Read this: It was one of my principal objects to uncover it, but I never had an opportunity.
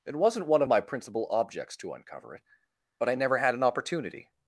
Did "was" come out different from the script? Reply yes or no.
yes